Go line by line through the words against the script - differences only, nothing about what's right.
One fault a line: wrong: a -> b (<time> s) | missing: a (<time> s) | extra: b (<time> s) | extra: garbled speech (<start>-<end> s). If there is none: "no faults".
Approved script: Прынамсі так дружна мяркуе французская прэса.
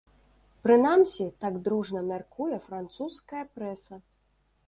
no faults